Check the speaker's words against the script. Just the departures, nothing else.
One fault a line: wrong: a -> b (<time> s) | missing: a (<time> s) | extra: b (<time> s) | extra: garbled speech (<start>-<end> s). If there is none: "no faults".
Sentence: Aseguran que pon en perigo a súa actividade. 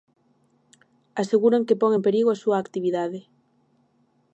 no faults